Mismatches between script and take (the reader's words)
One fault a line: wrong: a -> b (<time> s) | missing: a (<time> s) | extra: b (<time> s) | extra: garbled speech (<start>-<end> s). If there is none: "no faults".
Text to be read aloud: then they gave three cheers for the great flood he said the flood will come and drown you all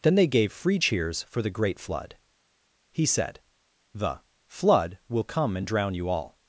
wrong: three -> free (0.5 s)